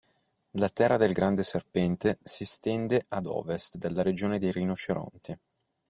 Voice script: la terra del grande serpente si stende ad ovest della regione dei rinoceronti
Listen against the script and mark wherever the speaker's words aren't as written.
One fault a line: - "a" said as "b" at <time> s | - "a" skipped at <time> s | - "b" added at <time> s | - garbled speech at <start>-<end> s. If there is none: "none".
none